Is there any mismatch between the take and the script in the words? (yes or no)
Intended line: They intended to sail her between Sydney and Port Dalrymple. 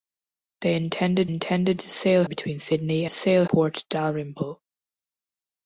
yes